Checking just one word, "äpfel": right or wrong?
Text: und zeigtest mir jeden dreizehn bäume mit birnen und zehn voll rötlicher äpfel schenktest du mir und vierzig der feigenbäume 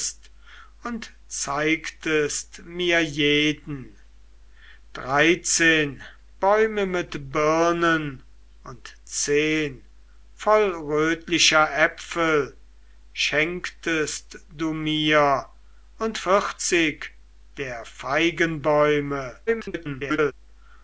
right